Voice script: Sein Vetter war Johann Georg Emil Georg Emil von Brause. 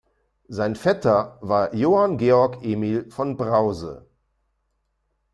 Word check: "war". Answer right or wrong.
right